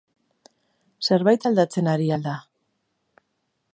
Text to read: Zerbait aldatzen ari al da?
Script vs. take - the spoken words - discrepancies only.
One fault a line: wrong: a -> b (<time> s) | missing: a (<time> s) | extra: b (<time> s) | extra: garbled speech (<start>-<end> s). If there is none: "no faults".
no faults